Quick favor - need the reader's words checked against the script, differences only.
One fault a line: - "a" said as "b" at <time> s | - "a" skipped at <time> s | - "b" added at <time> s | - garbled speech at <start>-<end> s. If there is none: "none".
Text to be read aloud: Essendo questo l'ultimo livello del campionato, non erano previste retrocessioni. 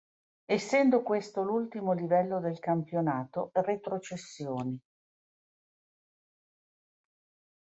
- "non erano previste" skipped at 3.5 s